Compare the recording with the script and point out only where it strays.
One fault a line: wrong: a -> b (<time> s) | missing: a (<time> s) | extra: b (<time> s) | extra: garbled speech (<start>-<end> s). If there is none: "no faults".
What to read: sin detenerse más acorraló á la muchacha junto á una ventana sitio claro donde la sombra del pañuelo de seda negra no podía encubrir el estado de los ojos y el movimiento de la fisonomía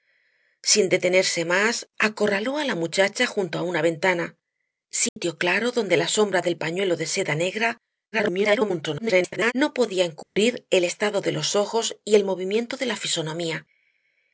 extra: garbled speech (8.1-9.5 s)